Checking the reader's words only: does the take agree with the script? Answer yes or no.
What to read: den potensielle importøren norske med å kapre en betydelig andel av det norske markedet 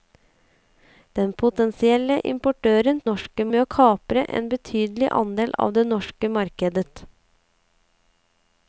yes